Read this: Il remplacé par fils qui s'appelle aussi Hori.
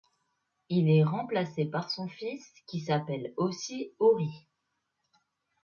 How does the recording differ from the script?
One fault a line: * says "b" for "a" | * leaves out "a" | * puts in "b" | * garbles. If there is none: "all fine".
* puts in "est"
* puts in "son"